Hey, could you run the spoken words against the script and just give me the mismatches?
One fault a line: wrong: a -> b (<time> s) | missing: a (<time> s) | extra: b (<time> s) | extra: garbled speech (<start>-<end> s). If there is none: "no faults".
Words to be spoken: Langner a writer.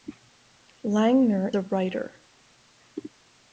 no faults